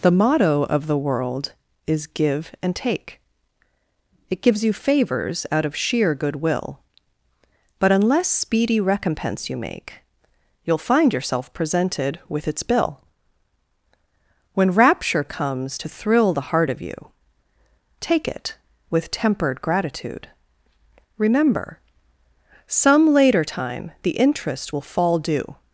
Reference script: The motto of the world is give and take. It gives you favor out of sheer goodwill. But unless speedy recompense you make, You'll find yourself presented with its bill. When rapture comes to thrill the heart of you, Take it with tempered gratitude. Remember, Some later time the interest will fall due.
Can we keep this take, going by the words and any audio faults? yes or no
no